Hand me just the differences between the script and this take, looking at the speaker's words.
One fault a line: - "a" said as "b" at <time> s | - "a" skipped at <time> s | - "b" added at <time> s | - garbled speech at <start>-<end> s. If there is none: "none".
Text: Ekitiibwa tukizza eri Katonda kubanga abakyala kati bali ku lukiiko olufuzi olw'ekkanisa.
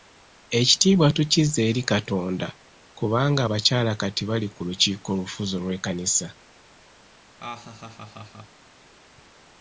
none